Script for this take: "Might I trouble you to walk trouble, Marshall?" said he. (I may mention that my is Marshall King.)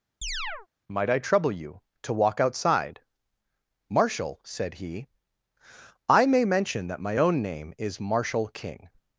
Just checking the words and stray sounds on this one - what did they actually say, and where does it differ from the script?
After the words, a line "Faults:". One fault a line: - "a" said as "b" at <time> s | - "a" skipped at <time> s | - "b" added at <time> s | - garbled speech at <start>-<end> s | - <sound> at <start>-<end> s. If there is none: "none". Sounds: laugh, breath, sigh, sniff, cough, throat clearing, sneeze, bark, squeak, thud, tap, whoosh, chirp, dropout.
"Might I trouble you to walk outside, Marshall?" said he. (I may mention that my own name is Marshall King.)
Faults:
- chirp at 0.2-0.7 s
- "trouble" said as "outside" at 2.4 s
- "own name" added at 7.2 s